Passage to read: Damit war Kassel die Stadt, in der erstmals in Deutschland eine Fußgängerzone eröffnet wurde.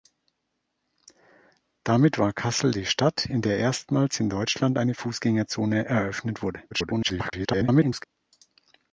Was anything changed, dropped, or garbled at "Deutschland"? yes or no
no